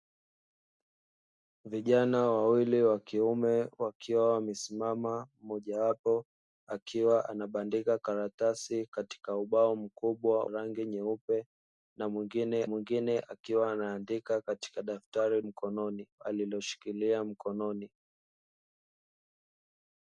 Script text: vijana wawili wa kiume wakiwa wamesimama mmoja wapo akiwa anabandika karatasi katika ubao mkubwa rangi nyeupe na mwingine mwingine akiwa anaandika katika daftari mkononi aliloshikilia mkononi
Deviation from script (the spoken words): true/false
false